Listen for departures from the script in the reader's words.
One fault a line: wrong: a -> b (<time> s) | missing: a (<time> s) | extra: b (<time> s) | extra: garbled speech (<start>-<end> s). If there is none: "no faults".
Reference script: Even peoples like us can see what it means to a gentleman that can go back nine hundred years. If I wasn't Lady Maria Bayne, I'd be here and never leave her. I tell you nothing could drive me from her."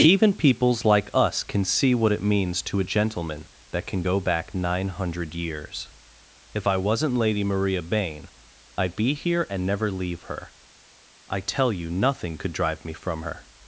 no faults